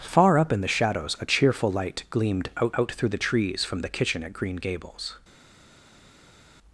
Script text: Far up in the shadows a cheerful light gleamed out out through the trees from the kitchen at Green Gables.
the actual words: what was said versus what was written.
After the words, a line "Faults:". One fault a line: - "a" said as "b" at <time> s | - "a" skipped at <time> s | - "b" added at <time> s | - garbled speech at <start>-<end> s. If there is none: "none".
Far up in the shadows a cheerful light gleamed out out through the trees from the kitchen at Green Gables.
Faults:
none